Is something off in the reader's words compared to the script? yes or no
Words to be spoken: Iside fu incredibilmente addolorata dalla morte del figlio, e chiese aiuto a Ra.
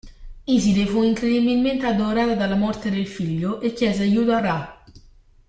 no